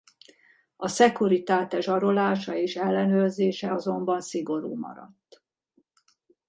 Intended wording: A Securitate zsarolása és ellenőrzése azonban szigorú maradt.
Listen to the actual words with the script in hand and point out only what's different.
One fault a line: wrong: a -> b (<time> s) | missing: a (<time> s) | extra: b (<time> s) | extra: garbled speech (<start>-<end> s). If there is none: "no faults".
no faults